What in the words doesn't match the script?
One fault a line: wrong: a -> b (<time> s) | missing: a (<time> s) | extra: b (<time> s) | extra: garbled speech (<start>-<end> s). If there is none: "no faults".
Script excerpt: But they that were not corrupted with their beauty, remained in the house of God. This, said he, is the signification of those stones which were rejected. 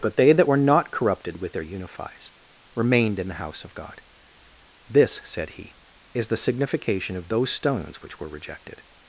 wrong: beauty -> unifies (1.6 s)